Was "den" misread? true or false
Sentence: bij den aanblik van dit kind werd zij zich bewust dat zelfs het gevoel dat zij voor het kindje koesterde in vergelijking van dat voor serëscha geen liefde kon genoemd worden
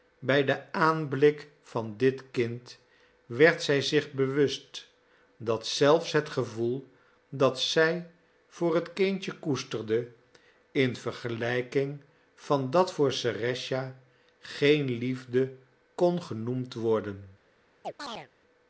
false